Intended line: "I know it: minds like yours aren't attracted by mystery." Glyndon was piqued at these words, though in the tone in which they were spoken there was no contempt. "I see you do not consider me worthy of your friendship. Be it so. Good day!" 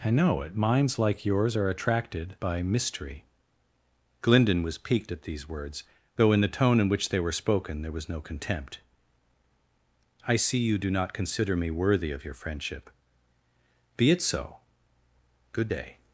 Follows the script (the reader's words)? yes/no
no